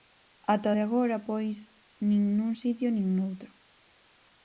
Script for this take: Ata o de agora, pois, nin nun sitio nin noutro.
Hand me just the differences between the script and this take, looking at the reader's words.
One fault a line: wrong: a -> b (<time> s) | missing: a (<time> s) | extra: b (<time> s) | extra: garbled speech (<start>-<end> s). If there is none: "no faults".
no faults